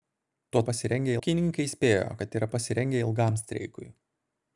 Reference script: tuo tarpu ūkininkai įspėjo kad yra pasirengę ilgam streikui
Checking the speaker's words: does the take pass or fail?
fail